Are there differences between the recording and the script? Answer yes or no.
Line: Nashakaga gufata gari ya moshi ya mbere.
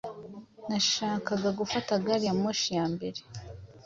no